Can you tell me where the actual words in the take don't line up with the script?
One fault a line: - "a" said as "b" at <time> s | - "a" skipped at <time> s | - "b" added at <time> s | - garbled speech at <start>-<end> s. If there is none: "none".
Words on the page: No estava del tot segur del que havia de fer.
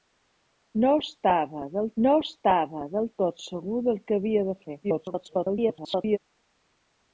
- "no estava del" added at 2.0 s
- garbled speech at 4.8-6.2 s